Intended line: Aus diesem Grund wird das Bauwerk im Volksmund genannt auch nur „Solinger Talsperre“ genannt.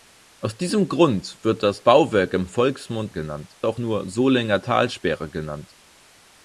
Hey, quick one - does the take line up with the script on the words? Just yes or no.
yes